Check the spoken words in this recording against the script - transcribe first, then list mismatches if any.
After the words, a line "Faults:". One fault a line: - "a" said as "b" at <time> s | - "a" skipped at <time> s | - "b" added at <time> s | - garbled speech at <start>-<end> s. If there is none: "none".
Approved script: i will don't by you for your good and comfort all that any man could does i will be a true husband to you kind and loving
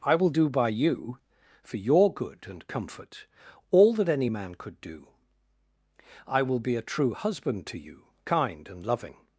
i will do by you for your good and comfort all that any man could do i will be a true husband to you kind and loving
Faults:
- "don't" said as "do" at 0.3 s
- "does" said as "do" at 4.8 s